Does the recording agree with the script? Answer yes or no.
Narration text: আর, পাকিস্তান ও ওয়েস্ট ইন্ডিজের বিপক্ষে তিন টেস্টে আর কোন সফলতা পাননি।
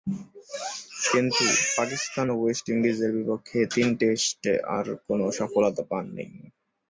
no